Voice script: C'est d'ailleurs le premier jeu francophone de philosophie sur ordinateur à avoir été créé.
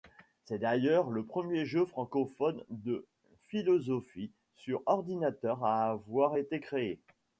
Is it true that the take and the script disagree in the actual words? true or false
false